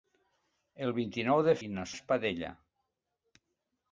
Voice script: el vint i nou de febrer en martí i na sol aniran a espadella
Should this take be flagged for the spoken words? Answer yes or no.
yes